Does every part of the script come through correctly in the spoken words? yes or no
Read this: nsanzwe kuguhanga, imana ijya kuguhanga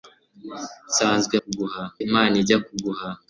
yes